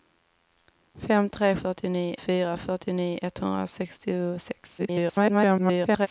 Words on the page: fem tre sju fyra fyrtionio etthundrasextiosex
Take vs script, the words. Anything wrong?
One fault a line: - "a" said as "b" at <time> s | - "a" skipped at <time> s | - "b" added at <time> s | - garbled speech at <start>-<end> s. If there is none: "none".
- "sju" said as "fyrtionio" at 1.6 s
- garbled speech at 4.8-6.1 s